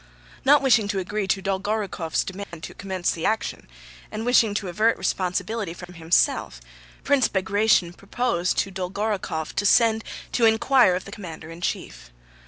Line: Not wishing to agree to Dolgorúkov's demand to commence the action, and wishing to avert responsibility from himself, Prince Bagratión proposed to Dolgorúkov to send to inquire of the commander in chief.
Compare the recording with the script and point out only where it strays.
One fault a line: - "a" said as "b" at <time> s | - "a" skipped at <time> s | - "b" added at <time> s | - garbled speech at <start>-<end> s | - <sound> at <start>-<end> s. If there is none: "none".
- dropout at 2.4-2.5 s
- dropout at 5.8-5.9 s